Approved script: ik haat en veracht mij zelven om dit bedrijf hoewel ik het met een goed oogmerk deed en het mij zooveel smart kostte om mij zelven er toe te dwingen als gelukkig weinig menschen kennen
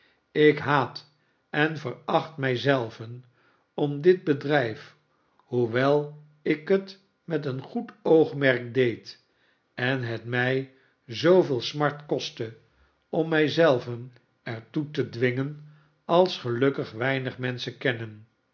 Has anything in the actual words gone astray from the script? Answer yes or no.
no